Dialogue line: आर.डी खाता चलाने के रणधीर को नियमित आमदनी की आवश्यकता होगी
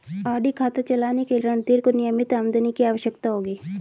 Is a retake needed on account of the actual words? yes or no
no